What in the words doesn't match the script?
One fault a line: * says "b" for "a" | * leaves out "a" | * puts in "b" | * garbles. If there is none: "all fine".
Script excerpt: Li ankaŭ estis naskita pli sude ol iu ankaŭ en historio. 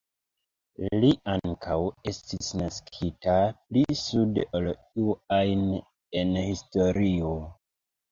* says "ajn" for "ankaŭ"